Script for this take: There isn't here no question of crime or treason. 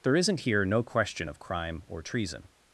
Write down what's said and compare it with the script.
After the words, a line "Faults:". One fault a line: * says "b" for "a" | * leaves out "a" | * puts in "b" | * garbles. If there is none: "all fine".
There isn't here no question of crime or treason.
Faults:
all fine